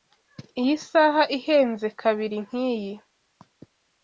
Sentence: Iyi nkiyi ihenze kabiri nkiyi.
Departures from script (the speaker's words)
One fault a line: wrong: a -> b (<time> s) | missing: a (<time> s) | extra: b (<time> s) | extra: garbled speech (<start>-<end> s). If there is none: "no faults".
wrong: nkiyi -> saha (0.9 s)